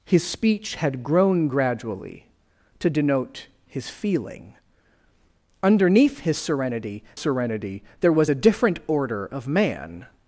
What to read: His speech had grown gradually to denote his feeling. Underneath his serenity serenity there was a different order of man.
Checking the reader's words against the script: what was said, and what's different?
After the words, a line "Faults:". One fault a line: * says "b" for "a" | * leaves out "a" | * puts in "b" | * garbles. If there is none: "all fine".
His speech had grown gradually to denote his feeling. Underneath his serenity serenity there was a different order of man.
Faults:
all fine